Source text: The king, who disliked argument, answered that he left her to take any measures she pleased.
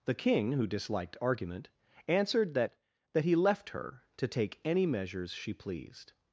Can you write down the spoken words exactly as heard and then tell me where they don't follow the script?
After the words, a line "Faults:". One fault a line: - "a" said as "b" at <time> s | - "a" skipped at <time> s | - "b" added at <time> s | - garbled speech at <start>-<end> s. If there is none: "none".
The king, who disliked argument, answered that that he left her to take any measures she pleased.
Faults:
- "that" added at 3.1 s